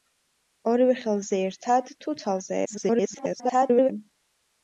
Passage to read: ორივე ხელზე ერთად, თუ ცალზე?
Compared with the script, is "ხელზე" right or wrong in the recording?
right